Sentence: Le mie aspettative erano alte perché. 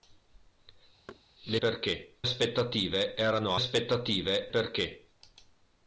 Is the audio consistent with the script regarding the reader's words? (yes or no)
no